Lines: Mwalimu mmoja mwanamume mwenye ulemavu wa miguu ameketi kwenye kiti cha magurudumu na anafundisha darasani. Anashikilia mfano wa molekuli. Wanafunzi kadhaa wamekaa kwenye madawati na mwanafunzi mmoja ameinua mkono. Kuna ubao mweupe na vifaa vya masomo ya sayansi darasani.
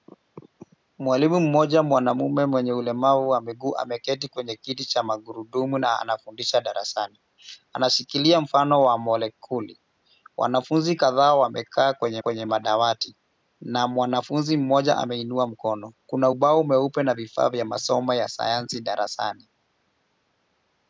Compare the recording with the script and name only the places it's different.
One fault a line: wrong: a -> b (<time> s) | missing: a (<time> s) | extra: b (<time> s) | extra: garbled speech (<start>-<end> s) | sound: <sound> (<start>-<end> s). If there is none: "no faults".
extra: kwenye (12.2 s)